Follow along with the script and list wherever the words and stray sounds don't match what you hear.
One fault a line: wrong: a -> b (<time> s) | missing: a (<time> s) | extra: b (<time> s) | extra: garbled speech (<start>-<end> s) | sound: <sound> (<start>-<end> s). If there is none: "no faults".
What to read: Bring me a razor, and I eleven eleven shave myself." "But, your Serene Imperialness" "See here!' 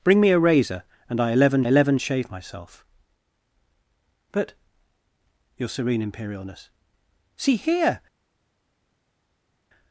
no faults